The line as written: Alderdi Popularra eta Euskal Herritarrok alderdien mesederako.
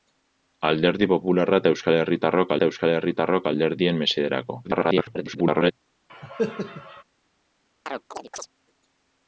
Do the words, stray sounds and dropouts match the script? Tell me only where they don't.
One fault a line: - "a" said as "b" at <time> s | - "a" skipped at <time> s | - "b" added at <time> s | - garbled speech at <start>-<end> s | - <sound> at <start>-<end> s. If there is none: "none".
- "eta Euskal Herritarrok" added at 2.6 s
- garbled speech at 4.6-5.7 s
- cough at 6.1-7.0 s
- chirp at 7.9-8.5 s